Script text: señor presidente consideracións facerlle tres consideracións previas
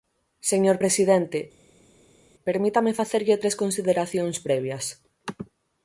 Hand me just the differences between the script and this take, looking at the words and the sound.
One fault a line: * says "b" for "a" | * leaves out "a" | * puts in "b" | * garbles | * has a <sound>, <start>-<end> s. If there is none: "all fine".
* says "permítame" for "consideracións"